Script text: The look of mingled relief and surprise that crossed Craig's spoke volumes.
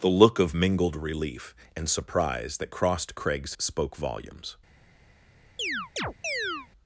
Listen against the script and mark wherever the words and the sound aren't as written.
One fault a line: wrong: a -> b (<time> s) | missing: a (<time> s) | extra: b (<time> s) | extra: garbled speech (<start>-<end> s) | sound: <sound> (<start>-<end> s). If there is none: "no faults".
sound: chirp (5.6-6.7 s)